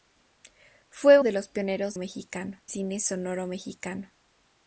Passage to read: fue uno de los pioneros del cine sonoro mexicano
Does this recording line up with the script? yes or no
no